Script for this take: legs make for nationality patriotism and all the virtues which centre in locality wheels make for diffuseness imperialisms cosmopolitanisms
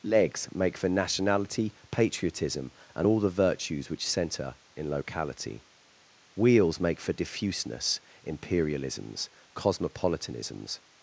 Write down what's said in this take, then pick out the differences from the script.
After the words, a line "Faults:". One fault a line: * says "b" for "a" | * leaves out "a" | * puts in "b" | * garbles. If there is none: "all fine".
legs make for nationality patriotism and all the virtues which centre in locality wheels make for diffuseness imperialisms cosmopolitanisms
Faults:
all fine